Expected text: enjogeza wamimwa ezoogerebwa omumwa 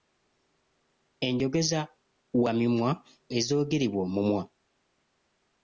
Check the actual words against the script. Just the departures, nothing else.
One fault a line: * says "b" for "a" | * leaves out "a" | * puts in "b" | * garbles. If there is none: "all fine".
all fine